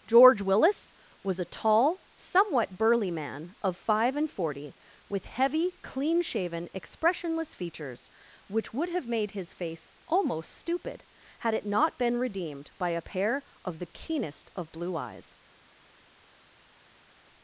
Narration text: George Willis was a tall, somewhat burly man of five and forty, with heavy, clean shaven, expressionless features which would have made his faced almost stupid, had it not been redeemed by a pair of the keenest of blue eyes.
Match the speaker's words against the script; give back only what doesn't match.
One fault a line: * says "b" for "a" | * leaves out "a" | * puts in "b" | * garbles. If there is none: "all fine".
* says "face" for "faced"